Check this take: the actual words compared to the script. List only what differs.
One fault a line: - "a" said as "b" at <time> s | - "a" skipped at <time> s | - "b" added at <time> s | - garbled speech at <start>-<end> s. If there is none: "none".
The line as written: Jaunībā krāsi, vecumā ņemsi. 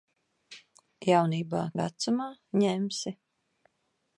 - "krāsi" skipped at 1.6 s